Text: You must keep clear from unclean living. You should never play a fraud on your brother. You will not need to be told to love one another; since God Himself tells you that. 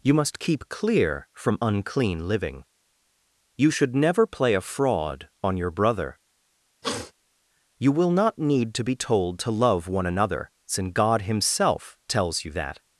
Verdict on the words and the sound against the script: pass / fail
fail